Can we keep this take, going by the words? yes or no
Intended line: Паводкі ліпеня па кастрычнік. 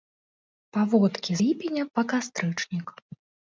yes